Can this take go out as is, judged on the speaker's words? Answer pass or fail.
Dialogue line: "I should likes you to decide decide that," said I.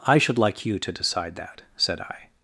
fail